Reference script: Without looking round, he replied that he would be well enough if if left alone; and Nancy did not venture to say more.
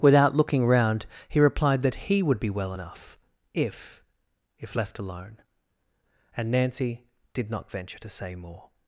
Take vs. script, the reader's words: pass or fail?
pass